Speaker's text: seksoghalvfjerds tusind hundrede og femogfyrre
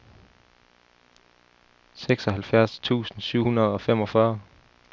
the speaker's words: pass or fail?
fail